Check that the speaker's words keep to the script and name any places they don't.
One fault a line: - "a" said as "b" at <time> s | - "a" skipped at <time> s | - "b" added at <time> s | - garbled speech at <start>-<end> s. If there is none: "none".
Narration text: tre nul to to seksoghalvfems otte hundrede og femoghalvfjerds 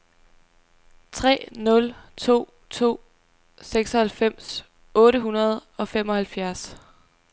none